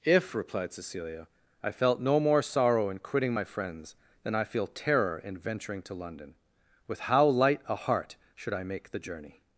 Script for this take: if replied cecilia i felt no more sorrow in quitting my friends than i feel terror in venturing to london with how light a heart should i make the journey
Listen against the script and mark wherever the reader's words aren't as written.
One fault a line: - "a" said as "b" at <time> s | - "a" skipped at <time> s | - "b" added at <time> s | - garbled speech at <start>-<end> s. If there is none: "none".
none